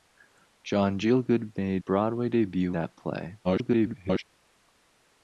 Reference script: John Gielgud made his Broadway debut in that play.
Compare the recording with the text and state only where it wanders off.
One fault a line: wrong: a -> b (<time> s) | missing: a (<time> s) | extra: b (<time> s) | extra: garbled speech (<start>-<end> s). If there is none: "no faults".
missing: his (1.8 s)
missing: in (2.8 s)
extra: garbled speech (3.4-4.2 s)